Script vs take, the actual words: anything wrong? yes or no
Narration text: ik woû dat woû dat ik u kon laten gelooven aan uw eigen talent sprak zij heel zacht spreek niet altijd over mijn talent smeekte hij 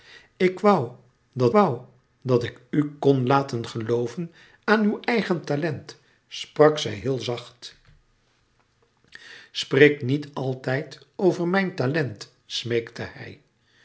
no